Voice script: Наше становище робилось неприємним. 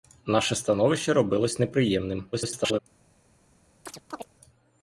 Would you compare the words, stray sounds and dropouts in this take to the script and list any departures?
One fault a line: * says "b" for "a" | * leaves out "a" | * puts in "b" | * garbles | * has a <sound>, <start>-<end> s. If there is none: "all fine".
* garbles
* has a chirp, 3.9-4.3 s